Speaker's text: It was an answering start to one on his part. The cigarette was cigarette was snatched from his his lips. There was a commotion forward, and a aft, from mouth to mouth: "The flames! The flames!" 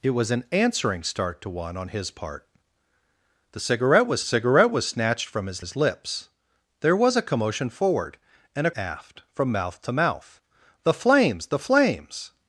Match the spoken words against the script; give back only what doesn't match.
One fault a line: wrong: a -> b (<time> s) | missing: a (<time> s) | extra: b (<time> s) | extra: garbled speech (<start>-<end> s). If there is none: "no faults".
no faults